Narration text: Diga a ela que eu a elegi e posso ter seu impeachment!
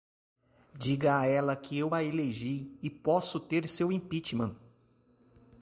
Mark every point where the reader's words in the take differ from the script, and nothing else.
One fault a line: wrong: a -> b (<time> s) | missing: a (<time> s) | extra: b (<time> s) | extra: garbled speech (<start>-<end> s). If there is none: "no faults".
no faults